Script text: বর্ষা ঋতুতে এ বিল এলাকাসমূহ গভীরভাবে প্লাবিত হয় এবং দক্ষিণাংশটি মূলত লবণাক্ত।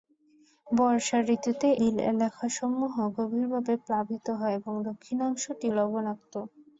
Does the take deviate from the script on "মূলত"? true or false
true